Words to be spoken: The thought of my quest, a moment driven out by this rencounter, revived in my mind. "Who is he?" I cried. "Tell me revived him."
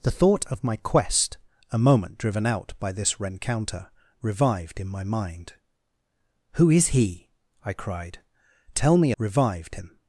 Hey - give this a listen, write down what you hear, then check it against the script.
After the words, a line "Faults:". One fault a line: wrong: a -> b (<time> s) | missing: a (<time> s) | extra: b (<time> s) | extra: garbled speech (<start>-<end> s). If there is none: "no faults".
The thought of my quest, a moment driven out by this rencounter, revived in my mind. "Who is he?" I cried. "Tell me revived him."
Faults:
no faults